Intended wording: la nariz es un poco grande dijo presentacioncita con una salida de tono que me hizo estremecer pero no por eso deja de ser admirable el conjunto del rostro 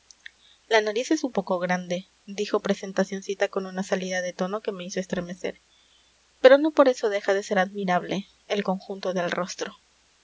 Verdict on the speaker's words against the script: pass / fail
pass